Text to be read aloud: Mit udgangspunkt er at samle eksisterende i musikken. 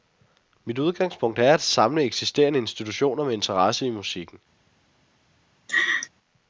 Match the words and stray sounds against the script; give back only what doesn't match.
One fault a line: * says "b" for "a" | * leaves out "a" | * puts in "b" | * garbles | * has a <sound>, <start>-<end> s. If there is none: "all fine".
* puts in "institutioner med interesse"
* has a laugh, 5.7-6.1 s